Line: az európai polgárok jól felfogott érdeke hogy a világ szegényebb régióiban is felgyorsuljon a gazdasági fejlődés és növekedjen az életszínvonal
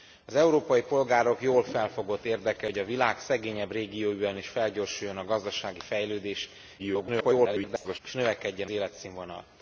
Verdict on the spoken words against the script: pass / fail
fail